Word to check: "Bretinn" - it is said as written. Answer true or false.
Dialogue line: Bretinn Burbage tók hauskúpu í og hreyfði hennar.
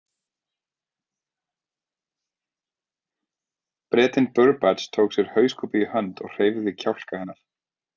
true